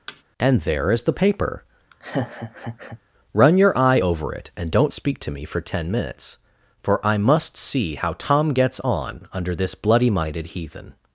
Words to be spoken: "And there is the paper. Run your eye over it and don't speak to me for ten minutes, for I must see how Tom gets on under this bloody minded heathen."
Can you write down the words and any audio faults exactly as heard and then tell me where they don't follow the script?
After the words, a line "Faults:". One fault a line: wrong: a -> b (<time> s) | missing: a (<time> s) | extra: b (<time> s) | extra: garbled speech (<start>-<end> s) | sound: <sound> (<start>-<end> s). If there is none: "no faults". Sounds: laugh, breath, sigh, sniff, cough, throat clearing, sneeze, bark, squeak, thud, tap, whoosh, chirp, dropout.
"And there is the paper. Run your eye over it and don't speak to me for ten minutes, for I must see how Tom gets on under this bloody minded heathen."
Faults:
sound: thud (0.1-0.2 s)
sound: laugh (1.9-3.0 s)